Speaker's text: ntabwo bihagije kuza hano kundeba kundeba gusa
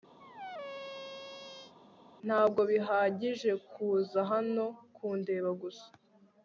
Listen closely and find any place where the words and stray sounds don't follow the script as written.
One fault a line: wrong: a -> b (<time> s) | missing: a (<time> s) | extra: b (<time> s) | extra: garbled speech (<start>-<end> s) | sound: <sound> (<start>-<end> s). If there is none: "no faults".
sound: squeak (0.2-1.7 s)
missing: kundeba (5.5 s)